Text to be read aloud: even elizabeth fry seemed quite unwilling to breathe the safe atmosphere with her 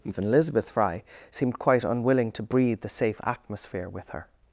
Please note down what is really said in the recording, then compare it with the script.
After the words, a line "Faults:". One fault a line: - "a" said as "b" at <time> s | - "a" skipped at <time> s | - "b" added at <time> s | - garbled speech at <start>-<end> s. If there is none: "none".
even elizabeth fry seemed quite unwilling to breathe the safe atmosphere with her
Faults:
none